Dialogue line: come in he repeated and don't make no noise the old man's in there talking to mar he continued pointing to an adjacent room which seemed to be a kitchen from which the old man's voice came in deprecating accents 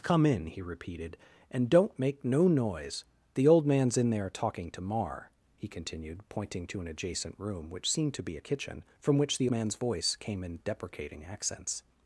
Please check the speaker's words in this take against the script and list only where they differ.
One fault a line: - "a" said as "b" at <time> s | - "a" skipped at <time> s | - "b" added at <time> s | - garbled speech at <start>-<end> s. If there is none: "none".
- "old" skipped at 9.5 s